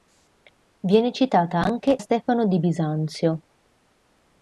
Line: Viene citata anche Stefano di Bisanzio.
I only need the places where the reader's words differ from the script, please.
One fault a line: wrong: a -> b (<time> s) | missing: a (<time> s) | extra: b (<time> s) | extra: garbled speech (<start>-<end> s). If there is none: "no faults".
no faults